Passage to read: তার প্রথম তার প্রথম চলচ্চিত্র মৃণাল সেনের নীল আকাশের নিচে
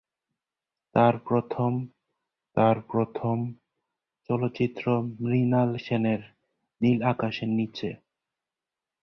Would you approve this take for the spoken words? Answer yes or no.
yes